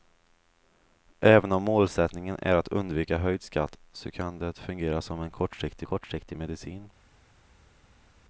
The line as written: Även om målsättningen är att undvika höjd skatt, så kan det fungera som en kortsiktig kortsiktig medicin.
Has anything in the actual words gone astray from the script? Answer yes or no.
no